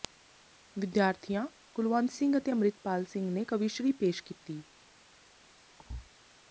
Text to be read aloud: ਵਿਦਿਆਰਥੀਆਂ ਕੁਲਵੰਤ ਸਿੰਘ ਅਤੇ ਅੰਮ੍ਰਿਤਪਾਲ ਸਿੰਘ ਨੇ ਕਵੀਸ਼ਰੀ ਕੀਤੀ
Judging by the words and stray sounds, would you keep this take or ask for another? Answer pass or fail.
fail